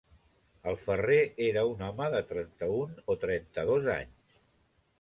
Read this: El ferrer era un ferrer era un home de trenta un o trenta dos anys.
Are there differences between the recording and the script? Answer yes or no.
yes